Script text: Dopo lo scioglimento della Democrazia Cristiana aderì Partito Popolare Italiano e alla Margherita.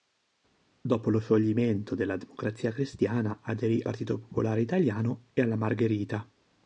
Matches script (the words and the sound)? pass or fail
pass